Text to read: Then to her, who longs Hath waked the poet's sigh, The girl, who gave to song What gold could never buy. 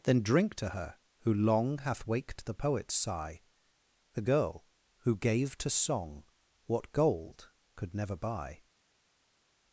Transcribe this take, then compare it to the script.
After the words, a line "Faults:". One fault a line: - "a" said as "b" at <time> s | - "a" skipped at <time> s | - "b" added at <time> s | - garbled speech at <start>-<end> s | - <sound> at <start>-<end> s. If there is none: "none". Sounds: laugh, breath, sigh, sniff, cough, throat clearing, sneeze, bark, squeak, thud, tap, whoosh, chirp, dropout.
Then drink to her, who long Hath waked the poet's sigh, The girl, who gave to song What gold could never buy.
Faults:
- "drink" added at 0.2 s
- "longs" said as "long" at 1.3 s